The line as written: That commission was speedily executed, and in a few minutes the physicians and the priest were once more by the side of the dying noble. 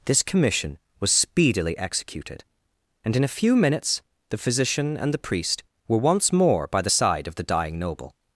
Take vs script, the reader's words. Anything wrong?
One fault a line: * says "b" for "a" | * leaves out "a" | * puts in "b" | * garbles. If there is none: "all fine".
* says "This" for "That"
* says "physician" for "physicians"